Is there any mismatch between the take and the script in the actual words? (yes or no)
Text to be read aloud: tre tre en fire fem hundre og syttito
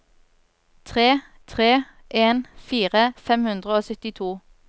no